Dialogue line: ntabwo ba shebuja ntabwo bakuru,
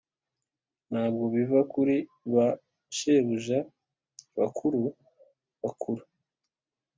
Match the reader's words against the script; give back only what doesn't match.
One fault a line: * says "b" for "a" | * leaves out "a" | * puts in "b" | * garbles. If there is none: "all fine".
* puts in "biva kuri"
* says "bakuru" for "ntabwo"